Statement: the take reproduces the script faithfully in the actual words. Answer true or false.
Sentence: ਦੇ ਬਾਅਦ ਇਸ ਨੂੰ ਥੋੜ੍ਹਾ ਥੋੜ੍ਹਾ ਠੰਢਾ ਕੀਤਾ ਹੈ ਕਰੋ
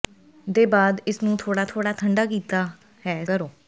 true